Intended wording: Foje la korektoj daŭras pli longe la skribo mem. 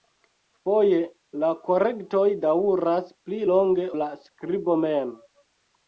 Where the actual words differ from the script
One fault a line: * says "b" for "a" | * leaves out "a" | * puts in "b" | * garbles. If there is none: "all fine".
all fine